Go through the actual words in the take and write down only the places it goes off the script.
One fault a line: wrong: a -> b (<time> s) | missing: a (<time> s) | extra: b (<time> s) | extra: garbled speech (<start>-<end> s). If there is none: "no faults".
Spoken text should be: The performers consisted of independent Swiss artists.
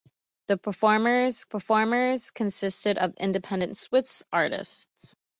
extra: performers (1.4 s)